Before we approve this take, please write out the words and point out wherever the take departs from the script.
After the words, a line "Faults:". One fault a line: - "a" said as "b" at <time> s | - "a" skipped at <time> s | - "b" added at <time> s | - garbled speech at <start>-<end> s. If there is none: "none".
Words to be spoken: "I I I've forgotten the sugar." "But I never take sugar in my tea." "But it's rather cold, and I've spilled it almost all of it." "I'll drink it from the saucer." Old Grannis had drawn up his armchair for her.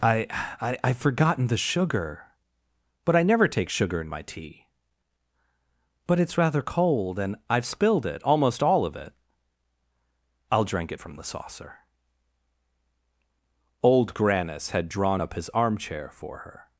"I I I've forgotten the sugar." "But I never take sugar in my tea." "But it's rather cold, and I've spilled it almost all of it." "I'll drink it from the saucer." Old Grannis had drawn up his armchair for her.
Faults:
none